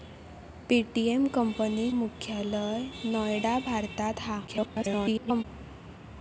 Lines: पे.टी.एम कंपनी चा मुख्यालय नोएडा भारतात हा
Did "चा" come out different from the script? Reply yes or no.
yes